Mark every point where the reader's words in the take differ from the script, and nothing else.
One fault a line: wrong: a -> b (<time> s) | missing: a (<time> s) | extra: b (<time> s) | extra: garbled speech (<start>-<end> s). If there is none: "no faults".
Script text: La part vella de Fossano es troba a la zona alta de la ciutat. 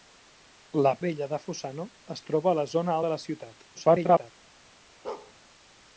missing: part (0.9 s)
missing: alta (3.0 s)
extra: garbled speech (3.7-4.3 s)